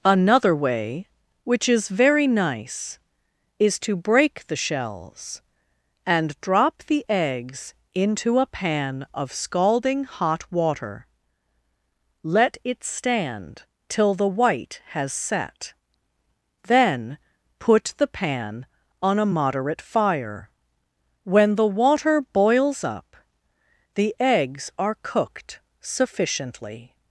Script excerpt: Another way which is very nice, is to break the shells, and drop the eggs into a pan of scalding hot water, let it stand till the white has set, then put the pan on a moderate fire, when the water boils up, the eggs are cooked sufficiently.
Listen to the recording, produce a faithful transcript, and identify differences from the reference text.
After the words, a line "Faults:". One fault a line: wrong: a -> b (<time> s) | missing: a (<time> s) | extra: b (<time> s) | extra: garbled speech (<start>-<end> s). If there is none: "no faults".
Another way which is very nice, is to break the shells, and drop the eggs into a pan of scalding hot water, let it stand till the white has set, then put the pan on a moderate fire, when the water boils up, the eggs are cooked sufficiently.
Faults:
no faults